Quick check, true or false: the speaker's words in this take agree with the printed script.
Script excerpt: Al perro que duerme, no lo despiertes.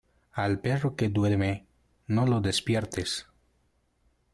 true